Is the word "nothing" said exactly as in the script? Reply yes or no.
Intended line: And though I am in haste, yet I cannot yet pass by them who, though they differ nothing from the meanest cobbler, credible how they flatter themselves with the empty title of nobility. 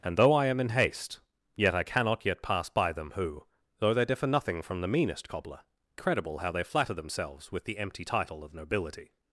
yes